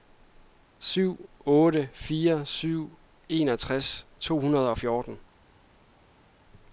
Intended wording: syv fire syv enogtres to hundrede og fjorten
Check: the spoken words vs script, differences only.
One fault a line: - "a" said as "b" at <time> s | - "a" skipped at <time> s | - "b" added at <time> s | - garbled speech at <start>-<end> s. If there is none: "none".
- "otte" added at 1.4 s